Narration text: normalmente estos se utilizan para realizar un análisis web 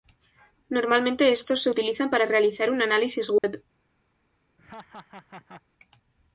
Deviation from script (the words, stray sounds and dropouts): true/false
true